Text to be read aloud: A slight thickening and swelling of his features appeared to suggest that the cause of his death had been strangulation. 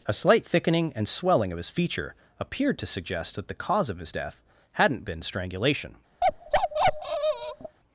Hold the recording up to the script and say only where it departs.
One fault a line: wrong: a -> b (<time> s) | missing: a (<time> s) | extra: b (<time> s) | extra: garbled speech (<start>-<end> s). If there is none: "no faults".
wrong: features -> feature (1.7 s)
wrong: had -> hadn't (4.7 s)